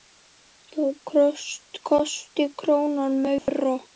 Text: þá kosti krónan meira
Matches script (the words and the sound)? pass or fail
fail